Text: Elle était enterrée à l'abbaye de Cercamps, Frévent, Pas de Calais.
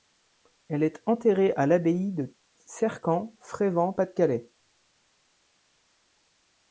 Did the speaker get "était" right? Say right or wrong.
wrong